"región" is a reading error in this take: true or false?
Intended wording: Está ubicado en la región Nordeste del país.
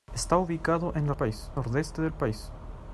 true